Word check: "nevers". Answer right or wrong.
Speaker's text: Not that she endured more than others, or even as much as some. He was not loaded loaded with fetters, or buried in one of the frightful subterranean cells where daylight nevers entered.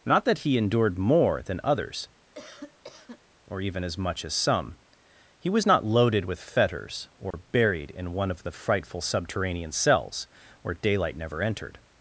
wrong